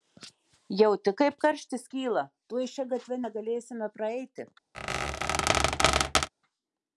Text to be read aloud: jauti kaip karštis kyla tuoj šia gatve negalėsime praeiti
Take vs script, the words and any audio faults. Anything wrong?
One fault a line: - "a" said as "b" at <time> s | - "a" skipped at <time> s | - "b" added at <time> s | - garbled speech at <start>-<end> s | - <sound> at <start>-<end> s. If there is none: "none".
- squeak at 4.7-6.3 s